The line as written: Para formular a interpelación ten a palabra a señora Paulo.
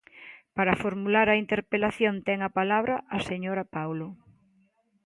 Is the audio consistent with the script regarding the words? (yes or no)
yes